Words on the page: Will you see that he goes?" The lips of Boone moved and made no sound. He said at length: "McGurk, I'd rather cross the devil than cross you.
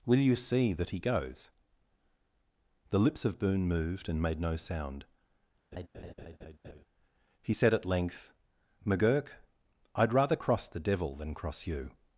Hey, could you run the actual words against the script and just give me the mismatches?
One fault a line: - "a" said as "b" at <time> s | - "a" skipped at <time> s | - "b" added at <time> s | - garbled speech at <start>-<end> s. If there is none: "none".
none